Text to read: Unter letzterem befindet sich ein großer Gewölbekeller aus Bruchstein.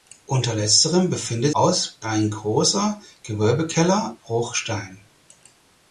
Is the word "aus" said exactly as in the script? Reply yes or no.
no